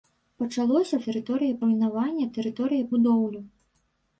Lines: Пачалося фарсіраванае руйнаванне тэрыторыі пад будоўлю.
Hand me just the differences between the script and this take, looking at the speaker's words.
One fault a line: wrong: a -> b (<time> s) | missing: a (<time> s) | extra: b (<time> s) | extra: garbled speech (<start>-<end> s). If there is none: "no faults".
wrong: фарсіраванае -> тэрыторыі (1.1 s)
missing: пад (2.9 s)